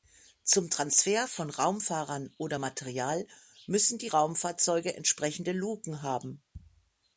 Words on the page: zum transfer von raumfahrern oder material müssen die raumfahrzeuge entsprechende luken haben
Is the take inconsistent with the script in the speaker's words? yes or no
no